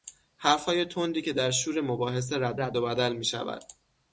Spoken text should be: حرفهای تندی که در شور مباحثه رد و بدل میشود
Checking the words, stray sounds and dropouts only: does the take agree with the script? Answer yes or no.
no